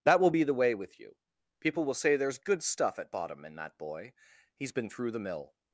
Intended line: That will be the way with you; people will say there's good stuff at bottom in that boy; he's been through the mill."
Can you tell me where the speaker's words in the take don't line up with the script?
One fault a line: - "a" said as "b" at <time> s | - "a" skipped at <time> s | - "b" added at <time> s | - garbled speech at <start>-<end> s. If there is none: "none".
none